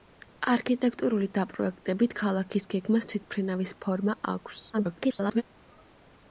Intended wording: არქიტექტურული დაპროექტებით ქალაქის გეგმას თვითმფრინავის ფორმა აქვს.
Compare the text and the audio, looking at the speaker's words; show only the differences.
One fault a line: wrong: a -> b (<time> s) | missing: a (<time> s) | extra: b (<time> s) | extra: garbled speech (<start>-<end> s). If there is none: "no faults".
extra: garbled speech (4.7-5.4 s)